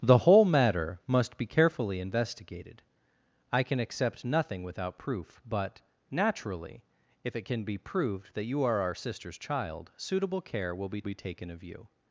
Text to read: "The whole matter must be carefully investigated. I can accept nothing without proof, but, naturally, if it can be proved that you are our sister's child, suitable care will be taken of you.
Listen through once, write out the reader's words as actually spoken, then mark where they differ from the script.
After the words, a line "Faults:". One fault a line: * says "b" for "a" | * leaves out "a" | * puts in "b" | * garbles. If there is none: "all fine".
"The whole matter must be carefully investigated. I can accept nothing without proof, but, naturally, if it can be proved that you are our sister's child, suitable care will be be taken of you.
Faults:
* puts in "be"